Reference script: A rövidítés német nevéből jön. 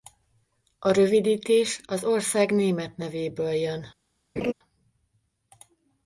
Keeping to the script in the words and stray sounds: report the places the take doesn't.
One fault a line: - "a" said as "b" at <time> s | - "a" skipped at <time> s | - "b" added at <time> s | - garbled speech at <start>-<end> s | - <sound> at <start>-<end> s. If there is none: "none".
- "az ország" added at 1.9 s
- laugh at 4.4-4.5 s